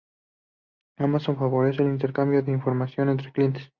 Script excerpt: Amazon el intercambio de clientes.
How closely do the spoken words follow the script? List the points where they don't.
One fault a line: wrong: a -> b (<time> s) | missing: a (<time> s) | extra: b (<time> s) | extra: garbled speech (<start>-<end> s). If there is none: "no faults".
extra: favorece (1.4 s)
extra: información entre (2.5 s)